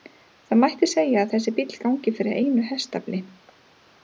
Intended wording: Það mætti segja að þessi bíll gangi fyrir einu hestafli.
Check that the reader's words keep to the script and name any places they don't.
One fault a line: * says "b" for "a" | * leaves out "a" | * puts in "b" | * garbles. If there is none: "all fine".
all fine